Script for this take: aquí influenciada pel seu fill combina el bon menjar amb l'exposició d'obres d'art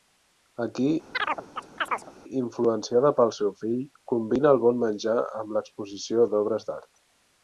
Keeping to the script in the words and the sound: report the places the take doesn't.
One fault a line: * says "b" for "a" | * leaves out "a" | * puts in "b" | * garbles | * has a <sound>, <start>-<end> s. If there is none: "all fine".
* has a chirp, 1.1-2.1 s